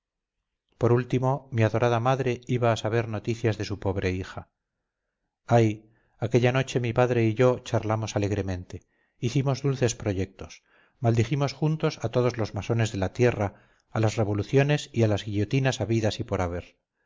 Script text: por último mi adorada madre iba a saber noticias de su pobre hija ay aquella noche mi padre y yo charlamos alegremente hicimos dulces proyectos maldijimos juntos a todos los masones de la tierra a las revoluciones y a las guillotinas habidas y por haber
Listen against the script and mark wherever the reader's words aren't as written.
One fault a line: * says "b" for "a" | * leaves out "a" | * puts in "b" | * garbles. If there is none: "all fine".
all fine